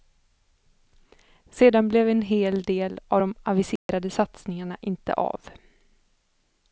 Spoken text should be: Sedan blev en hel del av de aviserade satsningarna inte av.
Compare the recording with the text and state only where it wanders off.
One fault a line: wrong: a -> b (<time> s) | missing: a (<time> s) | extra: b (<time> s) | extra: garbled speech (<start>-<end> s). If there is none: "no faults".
no faults